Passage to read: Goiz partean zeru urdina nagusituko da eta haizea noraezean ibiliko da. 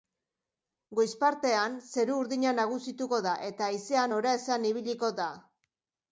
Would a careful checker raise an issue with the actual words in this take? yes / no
no